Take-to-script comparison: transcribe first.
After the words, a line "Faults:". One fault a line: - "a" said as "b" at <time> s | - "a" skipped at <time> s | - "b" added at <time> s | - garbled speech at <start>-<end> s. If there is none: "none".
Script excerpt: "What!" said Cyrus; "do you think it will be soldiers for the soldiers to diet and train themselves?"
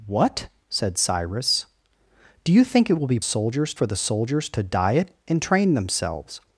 "What!" said Cyrus; "do you think it will be soldiers for the soldiers to diet and train themselves?"
Faults:
none